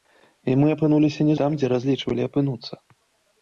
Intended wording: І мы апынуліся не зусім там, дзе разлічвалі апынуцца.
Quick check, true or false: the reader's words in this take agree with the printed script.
false